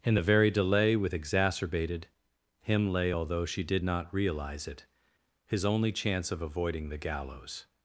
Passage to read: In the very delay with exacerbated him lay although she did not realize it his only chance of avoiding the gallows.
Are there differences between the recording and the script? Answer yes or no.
no